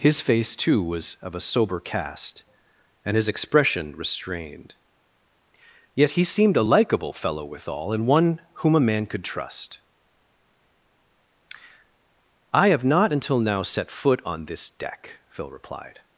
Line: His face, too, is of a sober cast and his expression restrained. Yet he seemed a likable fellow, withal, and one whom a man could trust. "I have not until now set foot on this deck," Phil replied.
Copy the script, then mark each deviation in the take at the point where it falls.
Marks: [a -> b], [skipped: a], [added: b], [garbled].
His face, too, [is -> was] of a sober cast and his expression restrained. Yet he seemed a likable fellow, withal, and one whom a man could trust. "I have not until now set foot on this deck," Phil replied.